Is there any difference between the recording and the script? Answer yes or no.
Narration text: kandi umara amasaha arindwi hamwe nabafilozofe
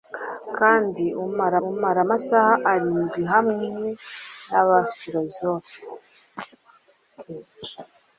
yes